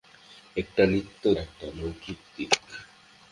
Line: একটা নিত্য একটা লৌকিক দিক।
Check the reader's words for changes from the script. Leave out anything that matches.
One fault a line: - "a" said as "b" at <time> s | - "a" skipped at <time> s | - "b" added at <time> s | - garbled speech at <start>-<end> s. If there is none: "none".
none